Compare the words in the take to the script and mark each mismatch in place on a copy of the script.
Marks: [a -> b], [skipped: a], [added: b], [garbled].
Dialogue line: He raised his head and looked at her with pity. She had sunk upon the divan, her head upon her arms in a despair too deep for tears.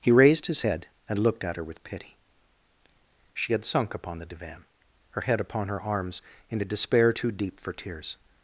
He raised his head and looked at her with pity. She had sunk upon the divan, her head upon her arms in a despair too deep for tears.